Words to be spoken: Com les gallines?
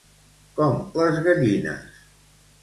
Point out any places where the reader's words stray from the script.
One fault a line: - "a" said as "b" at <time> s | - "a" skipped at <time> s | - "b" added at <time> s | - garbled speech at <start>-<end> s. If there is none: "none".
none